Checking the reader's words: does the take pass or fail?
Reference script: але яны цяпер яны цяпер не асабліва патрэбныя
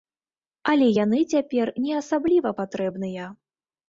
fail